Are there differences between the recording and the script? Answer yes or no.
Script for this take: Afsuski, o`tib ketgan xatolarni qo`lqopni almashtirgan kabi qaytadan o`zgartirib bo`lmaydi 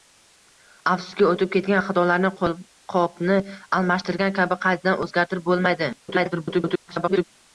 yes